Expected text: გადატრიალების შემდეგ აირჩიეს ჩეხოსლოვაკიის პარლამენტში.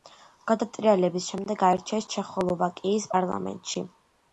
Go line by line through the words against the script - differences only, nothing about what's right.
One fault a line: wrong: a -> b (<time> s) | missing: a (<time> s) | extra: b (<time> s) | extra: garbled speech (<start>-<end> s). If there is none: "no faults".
no faults